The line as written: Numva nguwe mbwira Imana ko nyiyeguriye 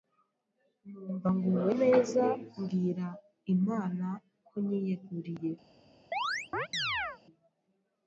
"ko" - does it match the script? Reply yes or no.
yes